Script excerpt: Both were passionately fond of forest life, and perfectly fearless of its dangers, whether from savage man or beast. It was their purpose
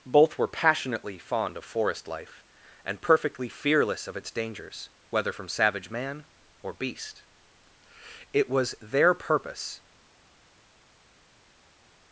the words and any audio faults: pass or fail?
pass